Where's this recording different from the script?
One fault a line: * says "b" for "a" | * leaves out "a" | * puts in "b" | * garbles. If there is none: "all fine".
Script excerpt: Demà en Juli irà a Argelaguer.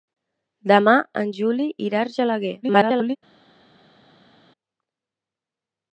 * garbles